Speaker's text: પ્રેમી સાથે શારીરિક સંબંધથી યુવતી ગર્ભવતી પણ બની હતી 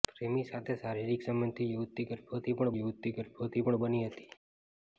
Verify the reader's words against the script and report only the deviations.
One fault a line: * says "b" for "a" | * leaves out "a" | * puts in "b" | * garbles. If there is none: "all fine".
* puts in "યુવતી ગર્ભવતી પણ"